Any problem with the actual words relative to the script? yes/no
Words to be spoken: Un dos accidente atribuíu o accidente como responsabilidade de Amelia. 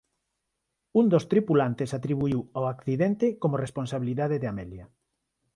yes